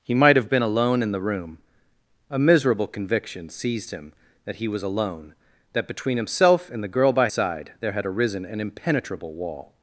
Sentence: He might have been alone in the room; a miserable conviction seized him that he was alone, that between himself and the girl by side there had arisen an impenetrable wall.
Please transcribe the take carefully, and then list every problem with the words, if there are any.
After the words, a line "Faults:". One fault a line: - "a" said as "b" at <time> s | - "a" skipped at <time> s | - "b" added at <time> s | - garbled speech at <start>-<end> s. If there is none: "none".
He might have been alone in the room; a miserable conviction seized him that he was alone, that between himself and the girl by side there had arisen an impenetrable wall.
Faults:
none